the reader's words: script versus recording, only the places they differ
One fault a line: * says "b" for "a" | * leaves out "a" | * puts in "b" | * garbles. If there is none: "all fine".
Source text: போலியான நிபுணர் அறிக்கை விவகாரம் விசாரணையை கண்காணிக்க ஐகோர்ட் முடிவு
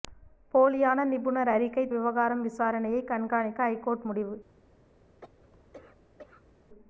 all fine